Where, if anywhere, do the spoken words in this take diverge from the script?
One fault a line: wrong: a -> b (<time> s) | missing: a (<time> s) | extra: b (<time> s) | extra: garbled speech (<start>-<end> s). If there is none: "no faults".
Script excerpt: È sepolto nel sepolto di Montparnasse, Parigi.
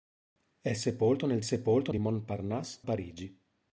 no faults